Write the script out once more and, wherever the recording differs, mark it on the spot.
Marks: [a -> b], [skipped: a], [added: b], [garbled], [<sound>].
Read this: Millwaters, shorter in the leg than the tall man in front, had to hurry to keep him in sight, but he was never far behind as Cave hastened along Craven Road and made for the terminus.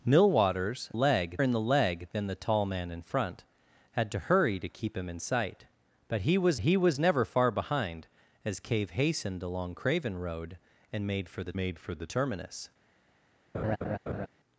Millwaters, [shorter -> leg] in the leg than the tall man in front, had to hurry to keep him in sight, but he was [added: he was] never far behind as Cave hastened along Craven Road and made for the [added: made for the] terminus. [laugh]